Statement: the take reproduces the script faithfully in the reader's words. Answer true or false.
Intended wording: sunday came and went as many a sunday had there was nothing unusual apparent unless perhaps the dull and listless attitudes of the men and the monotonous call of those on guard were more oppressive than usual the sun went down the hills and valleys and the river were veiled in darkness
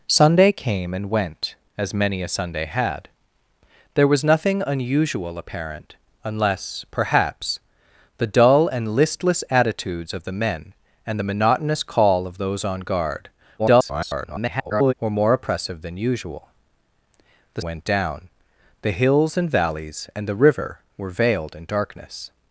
false